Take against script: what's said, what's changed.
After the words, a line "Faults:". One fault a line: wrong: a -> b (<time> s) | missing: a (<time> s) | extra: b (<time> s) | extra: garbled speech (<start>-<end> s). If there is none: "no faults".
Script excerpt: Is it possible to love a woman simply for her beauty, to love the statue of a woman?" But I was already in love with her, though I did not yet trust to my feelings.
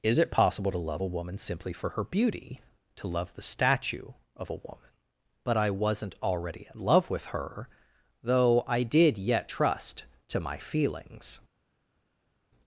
Is it possible to love a woman simply for her beauty, to love the statue of a woman?" But I wasn't already in love with her, though I did yet trust to my feelings.
Faults:
wrong: was -> wasn't (5.7 s)
missing: not (9.2 s)